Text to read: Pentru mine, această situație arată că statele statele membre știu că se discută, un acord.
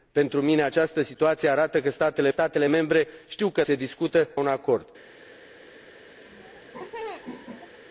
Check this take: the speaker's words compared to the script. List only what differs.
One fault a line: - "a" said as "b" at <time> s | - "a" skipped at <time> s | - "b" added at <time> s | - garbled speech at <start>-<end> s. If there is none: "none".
none